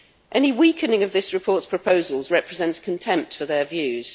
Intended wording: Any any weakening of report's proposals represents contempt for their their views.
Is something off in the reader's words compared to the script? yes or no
yes